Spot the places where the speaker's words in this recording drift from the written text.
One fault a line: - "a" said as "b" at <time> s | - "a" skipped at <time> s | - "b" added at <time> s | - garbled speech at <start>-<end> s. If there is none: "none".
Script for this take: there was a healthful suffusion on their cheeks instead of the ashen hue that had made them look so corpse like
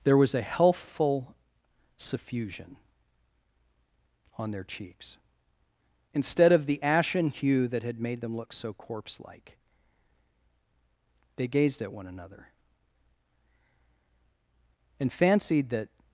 - "they gazed at one another and fancied that" added at 11.4 s